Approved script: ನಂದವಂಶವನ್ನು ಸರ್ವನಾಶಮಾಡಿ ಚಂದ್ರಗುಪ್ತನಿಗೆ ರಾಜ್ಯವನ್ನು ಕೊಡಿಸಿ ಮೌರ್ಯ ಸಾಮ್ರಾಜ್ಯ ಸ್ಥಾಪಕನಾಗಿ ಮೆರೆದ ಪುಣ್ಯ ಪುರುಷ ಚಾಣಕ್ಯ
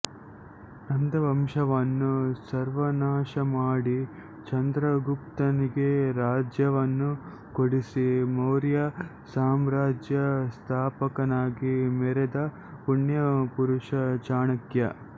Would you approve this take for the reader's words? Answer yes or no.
yes